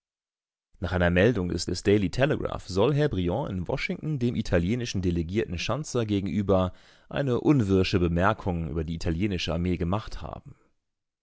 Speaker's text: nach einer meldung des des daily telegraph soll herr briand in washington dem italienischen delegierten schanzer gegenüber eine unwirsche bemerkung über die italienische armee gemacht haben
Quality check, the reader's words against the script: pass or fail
pass